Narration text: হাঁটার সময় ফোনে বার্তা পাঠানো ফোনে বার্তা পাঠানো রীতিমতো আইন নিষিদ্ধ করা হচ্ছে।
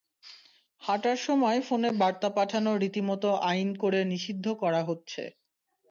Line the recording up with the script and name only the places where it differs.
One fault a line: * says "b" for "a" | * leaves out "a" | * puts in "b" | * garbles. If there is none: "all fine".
* leaves out "ফোনে বার্তা পাঠানো"
* puts in "করে"